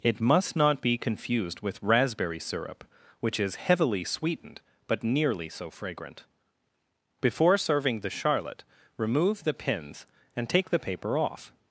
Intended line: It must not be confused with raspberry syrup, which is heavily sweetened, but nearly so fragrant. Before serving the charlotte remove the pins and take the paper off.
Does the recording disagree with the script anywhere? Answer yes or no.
no